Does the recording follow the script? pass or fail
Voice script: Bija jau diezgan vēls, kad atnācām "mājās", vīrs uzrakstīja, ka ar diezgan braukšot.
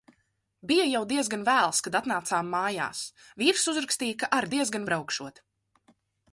pass